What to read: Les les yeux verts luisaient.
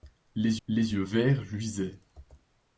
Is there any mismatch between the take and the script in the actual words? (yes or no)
no